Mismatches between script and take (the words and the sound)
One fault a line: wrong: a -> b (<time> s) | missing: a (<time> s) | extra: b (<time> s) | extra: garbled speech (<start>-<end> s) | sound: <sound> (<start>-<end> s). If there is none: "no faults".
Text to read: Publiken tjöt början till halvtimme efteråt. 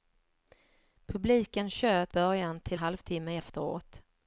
no faults